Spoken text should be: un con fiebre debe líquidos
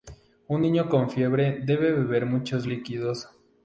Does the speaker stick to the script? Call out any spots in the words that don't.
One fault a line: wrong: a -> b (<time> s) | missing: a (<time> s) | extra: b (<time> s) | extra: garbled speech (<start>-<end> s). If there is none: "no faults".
extra: niño (0.6 s)
extra: beber muchos (1.9 s)